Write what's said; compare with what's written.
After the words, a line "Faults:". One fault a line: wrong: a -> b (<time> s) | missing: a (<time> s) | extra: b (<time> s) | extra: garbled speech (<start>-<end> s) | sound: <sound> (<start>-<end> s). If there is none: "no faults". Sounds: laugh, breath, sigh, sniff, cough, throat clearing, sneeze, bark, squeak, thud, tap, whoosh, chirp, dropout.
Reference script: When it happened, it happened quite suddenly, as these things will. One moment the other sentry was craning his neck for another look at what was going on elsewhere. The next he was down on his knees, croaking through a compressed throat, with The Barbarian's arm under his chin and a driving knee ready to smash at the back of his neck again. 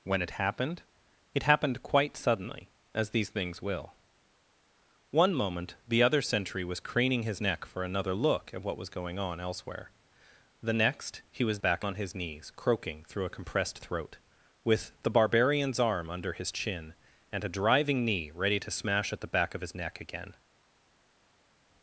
When it happened, it happened quite suddenly, as these things will. One moment the other sentry was craning his neck for another look at what was going on elsewhere. The next he was back on his knees, croaking through a compressed throat, with The Barbarian's arm under his chin and a driving knee ready to smash at the back of his neck again.
Faults:
wrong: down -> back (11.6 s)